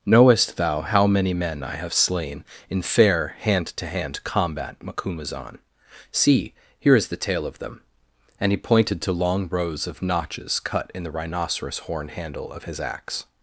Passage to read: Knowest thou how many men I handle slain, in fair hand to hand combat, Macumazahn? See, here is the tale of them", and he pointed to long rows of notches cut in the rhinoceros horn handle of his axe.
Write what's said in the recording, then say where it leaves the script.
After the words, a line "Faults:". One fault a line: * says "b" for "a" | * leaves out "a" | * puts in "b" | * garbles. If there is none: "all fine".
Knowest thou how many men I have slain, in fair hand to hand combat, Macumazahn? See, here is the tale of them", and he pointed to long rows of notches cut in the rhinoceros horn handle of his axe.
Faults:
* says "have" for "handle"